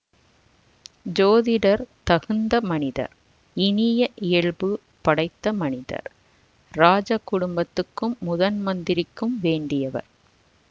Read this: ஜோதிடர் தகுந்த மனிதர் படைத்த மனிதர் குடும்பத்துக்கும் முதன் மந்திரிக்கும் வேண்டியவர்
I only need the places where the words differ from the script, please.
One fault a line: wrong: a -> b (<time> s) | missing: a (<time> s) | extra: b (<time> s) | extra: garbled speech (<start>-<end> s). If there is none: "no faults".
extra: இனிய இயல்பு (3.6 s)
extra: இராஜ (6.7 s)